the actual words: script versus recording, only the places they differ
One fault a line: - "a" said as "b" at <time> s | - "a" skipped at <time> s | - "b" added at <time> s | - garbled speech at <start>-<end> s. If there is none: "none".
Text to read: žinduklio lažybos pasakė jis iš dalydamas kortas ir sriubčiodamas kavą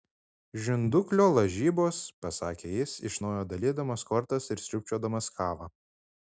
- "naujo" added at 3.3 s